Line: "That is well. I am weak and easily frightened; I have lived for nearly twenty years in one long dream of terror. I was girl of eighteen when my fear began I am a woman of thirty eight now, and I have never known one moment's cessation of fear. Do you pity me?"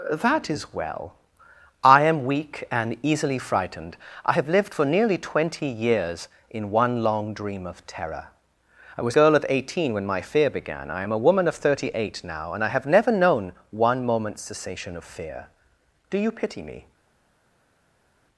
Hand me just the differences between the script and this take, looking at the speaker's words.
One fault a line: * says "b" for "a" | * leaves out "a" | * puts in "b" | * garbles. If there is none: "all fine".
all fine